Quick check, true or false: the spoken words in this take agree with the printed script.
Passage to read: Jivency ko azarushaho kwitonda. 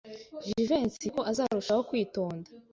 true